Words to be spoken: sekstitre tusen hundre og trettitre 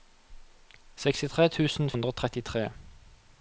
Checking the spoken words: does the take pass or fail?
pass